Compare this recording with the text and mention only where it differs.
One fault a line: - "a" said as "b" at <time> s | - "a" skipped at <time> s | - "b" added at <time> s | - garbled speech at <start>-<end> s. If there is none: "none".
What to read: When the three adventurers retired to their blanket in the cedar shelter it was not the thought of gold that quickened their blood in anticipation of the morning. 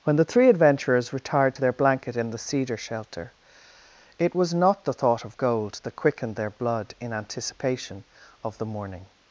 none